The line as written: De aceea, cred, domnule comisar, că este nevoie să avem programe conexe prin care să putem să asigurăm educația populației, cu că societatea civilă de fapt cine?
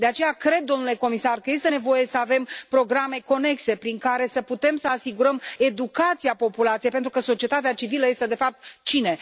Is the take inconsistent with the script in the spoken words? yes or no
yes